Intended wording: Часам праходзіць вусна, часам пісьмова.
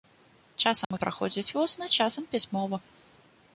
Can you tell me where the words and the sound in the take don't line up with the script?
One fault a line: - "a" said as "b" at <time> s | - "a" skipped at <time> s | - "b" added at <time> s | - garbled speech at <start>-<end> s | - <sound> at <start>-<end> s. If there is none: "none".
- dropout at 0.8-0.9 s